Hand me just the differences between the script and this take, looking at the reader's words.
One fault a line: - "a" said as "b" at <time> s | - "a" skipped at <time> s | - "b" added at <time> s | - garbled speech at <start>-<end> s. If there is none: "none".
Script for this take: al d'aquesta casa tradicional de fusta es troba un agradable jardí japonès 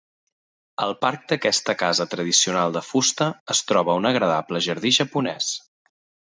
- "parc" added at 1.0 s